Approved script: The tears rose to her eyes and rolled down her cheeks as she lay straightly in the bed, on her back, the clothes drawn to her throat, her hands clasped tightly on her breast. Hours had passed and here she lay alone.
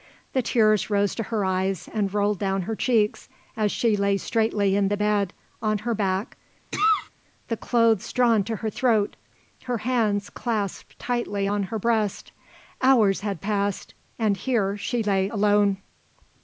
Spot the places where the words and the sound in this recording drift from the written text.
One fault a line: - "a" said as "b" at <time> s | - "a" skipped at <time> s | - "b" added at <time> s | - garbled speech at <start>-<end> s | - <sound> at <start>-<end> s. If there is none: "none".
- cough at 6.7-7.1 s